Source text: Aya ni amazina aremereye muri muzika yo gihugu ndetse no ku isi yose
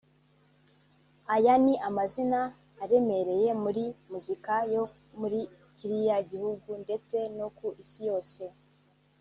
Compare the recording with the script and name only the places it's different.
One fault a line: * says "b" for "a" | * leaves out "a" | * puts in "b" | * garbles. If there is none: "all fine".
* puts in "muri kiriya"